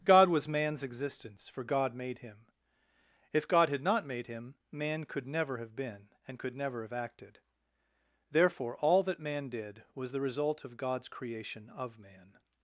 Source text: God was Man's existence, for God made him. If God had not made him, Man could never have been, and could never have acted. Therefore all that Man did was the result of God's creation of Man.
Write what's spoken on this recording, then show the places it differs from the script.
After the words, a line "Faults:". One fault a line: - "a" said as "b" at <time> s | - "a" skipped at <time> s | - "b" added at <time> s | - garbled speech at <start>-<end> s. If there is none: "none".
God was Man's existence, for God made him. If God had not made him, Man could never have been, and could never have acted. Therefore all that Man did was the result of God's creation of Man.
Faults:
none